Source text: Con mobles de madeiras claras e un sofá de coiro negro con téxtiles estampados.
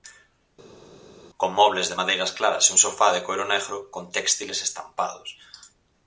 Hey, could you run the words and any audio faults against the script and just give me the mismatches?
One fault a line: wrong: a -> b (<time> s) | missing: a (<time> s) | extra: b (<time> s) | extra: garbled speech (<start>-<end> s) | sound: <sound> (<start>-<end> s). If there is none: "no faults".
no faults